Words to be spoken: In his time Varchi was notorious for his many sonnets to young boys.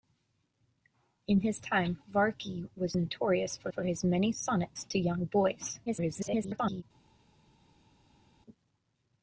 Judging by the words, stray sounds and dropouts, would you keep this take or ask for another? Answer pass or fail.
fail